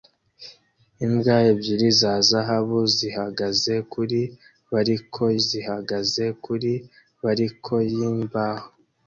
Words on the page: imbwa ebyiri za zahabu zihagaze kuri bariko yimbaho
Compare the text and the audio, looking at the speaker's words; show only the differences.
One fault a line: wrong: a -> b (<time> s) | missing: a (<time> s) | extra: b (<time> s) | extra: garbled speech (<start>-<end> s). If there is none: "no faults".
extra: zihagaze kuri bariko (5.5 s)